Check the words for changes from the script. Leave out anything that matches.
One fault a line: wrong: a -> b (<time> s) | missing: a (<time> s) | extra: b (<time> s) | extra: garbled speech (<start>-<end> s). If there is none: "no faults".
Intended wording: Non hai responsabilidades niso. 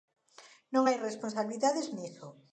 no faults